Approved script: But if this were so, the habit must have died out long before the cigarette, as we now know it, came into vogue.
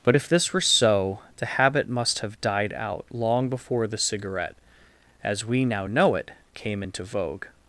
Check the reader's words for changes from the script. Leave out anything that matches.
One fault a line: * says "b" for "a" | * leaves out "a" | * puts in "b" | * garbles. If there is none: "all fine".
all fine